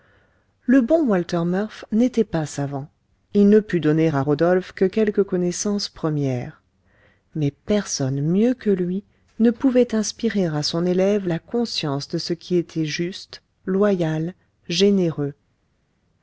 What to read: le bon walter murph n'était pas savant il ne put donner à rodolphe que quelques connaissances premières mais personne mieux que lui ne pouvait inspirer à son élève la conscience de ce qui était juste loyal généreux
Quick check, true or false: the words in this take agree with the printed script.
true